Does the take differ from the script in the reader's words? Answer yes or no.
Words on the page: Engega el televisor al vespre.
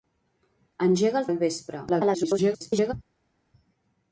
yes